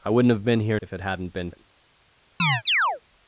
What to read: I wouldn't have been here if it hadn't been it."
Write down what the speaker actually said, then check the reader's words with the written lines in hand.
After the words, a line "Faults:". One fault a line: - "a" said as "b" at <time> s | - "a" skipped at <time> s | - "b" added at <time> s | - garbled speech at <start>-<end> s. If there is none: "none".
I wouldn't have been here if it hadn't been it."
Faults:
none